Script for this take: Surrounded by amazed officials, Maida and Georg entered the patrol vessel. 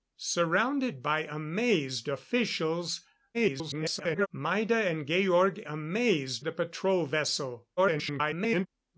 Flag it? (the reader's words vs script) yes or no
yes